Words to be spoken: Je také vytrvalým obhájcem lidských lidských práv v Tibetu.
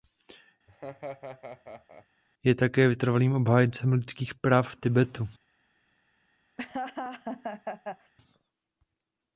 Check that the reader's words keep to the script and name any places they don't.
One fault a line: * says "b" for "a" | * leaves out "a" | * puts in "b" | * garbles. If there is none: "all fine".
* leaves out "lidských"